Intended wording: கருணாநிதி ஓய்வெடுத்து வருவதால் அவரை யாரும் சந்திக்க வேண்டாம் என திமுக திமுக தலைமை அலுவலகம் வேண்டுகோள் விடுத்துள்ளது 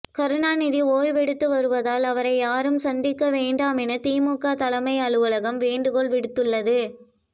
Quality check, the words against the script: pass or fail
fail